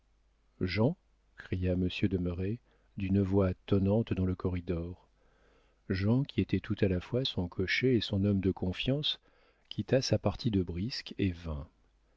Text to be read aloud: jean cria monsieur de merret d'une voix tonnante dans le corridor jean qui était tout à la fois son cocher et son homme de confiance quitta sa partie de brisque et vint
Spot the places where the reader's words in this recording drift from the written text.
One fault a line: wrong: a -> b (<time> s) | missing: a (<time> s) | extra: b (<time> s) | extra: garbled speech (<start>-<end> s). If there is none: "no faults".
no faults